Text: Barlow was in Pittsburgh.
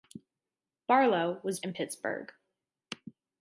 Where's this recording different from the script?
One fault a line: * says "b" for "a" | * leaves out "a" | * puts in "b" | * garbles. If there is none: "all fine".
all fine